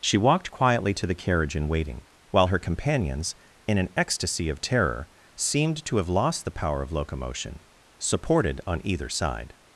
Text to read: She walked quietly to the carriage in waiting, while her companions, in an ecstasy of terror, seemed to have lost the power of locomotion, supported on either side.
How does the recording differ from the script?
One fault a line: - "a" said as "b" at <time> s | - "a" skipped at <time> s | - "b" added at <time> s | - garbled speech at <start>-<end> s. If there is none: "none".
none